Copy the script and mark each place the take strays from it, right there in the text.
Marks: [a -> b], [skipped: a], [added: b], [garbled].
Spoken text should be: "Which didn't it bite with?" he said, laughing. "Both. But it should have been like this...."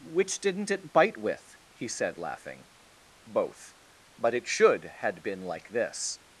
"Which didn't it bite with?" he said, laughing. "Both. But it should [have -> had] been like this...."